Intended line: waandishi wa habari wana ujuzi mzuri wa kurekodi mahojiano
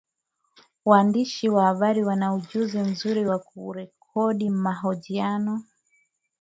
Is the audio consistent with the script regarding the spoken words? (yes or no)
yes